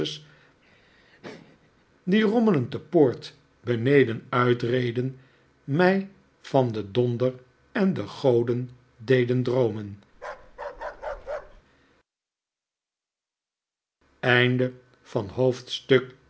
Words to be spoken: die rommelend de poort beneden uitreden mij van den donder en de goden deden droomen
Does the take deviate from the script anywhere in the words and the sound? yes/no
yes